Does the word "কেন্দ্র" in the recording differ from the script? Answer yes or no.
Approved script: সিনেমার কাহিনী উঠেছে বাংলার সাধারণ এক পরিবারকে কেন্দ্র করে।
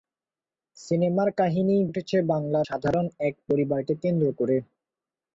no